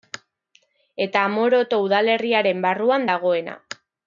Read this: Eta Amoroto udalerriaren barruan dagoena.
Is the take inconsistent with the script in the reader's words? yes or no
no